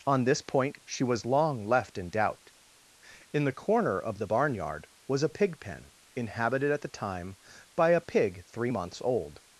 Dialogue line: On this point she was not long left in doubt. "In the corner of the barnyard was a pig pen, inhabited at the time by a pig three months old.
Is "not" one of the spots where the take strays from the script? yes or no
yes